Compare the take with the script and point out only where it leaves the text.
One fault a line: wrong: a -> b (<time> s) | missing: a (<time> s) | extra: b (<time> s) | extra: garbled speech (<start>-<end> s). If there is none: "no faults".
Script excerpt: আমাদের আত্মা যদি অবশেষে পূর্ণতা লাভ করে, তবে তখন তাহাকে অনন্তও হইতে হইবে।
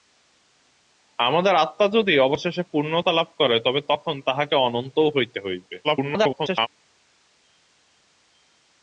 extra: garbled speech (5.8-6.7 s)